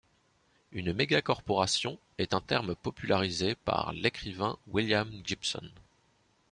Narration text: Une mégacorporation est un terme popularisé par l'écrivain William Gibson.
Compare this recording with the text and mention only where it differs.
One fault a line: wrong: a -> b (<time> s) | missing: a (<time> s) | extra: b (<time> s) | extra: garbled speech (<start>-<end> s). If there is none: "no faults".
no faults